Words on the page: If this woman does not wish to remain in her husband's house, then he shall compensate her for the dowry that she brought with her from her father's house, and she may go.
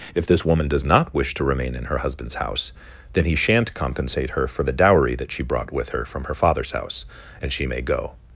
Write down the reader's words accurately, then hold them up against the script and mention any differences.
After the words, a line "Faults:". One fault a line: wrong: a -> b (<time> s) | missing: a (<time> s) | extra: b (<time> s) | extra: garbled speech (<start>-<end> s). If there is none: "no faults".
If this woman does not wish to remain in her husband's house, then he shan't compensate her for the dowry that she brought with her from her father's house, and she may go.
Faults:
wrong: shall -> shan't (3.4 s)